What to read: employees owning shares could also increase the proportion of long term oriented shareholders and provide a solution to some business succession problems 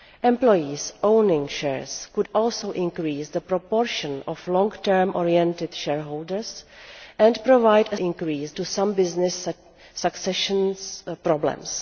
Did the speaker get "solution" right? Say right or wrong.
wrong